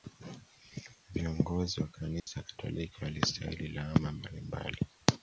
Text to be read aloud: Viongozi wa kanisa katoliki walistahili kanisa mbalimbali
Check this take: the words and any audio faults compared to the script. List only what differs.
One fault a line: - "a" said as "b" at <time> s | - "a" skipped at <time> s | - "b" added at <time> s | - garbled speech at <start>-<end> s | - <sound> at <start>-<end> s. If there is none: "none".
- dropout at 2.2-2.3 s
- "kanisa" said as "lawama" at 3.7 s